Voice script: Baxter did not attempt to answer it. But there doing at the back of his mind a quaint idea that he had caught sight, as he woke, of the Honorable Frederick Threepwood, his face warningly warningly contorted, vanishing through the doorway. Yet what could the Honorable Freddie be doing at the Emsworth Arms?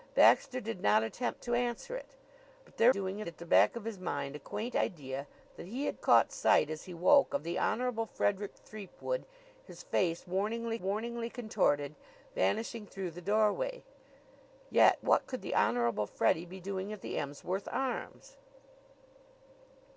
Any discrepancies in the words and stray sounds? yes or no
no